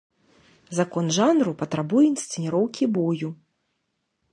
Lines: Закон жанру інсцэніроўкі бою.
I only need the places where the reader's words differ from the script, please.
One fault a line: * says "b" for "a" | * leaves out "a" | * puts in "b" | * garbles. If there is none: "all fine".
* puts in "патрабуе"